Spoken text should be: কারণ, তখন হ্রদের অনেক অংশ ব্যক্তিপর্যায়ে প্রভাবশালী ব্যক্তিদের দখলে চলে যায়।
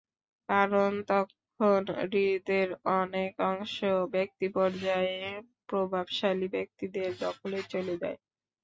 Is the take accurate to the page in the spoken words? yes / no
yes